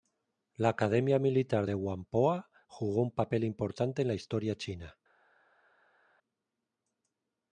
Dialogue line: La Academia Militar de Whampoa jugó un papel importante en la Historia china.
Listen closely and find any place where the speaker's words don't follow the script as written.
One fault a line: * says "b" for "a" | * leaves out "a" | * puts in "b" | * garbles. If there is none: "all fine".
all fine